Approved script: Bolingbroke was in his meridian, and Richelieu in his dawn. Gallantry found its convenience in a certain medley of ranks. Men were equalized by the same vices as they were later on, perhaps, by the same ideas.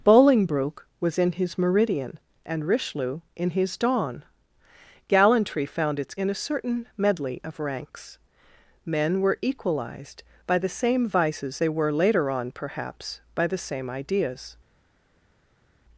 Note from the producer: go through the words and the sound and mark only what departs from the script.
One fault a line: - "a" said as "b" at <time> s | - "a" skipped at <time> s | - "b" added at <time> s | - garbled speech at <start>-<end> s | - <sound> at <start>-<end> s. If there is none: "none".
- "convenience" skipped at 6.2 s
- "as" skipped at 11.6 s